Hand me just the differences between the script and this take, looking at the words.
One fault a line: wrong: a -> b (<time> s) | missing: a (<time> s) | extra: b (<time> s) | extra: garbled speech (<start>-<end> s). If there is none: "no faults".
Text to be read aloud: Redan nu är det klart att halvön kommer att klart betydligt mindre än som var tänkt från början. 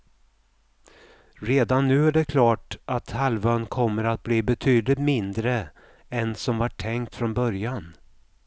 wrong: klart -> bli (4.2 s)